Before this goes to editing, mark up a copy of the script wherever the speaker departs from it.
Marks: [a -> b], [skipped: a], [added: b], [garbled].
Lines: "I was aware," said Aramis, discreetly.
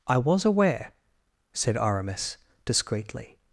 "I was aware," said Aramis, discreetly.